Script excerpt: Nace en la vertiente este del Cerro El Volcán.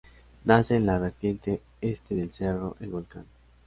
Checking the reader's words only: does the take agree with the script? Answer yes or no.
yes